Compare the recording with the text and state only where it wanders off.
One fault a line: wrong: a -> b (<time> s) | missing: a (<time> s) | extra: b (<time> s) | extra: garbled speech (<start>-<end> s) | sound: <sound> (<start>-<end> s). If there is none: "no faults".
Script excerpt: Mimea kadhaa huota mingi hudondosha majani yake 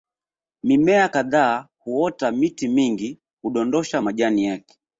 extra: miti (2.3 s)